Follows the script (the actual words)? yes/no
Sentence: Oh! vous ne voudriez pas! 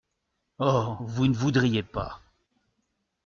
yes